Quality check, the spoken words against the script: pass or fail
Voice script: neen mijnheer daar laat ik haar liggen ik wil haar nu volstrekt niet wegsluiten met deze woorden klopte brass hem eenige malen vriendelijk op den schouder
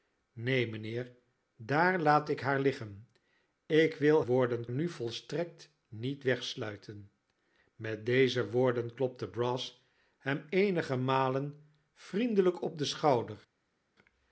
fail